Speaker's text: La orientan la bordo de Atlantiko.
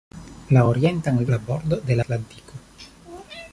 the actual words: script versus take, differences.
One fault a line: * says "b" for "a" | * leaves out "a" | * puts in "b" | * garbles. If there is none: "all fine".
all fine